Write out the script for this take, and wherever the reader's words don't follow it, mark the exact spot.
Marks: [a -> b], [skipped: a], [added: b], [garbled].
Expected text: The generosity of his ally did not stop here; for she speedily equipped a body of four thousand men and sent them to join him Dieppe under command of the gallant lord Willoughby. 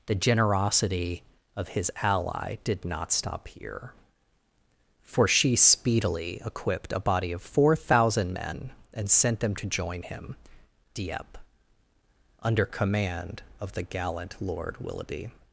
The generosity of his ally did not stop here; for she speedily equipped a body of four thousand men and sent them to join him Dieppe under command of the gallant lord Willoughby.